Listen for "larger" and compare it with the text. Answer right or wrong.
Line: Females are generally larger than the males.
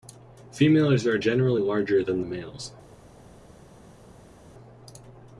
right